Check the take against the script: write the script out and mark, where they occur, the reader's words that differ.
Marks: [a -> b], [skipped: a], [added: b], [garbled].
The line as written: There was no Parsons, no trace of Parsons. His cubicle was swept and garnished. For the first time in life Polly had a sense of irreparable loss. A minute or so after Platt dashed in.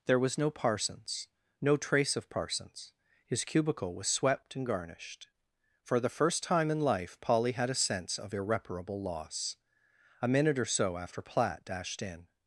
There was no Parsons, no trace of Parsons. His cubicle was swept and garnished. For the first time in life Polly had a sense of irreparable loss. A minute or so after Platt dashed in.